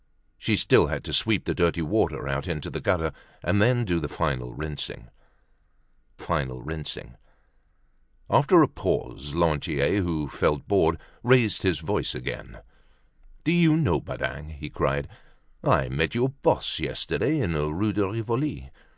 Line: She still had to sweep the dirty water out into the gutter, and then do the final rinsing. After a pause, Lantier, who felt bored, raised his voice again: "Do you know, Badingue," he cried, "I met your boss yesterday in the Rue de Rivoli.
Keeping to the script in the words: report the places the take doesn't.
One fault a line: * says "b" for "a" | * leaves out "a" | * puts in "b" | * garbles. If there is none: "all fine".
* puts in "final rinsing"